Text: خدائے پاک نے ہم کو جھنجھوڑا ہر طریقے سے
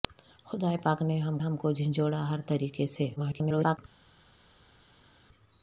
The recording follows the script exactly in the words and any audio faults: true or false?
false